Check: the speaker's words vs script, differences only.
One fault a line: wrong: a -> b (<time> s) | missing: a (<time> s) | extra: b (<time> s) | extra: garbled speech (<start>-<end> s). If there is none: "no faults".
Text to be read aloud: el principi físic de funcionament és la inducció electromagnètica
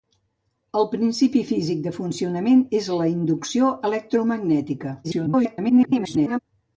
extra: garbled speech (5.0-6.4 s)